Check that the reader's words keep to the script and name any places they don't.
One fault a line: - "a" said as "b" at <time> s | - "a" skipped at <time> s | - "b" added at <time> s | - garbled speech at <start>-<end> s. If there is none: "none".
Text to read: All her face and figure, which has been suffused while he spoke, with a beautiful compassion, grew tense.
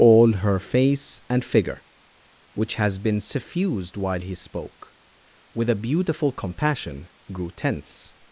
none